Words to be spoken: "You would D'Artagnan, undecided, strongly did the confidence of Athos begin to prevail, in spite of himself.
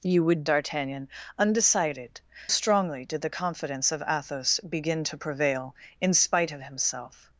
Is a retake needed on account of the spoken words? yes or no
no